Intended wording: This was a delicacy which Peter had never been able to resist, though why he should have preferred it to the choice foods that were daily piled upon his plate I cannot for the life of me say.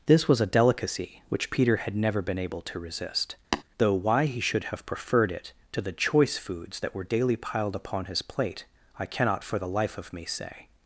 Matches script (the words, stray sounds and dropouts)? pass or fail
fail